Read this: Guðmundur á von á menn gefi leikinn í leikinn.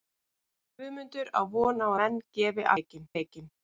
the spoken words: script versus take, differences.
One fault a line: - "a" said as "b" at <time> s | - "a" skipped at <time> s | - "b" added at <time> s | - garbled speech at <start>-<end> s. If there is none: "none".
none